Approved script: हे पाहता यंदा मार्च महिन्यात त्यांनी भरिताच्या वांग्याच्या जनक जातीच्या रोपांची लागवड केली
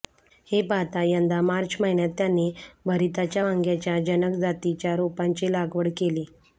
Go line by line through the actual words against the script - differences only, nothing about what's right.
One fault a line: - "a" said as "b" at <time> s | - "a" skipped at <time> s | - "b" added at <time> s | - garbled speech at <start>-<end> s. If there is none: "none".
none